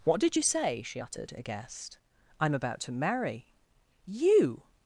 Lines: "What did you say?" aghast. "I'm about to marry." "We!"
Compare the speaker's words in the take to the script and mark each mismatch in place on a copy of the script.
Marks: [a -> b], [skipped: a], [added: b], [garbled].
"What did you say?" [added: she uttered] aghast. "I'm about to marry." ["We!" -> You]